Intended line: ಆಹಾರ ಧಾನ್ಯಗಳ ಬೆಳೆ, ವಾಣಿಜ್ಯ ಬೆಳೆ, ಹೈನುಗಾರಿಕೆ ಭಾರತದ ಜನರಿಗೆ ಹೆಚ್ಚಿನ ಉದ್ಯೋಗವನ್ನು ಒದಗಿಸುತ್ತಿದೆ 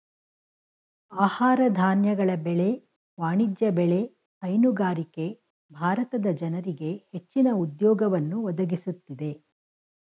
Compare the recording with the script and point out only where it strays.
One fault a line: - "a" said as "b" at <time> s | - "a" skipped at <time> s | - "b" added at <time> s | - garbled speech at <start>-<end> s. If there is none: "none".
none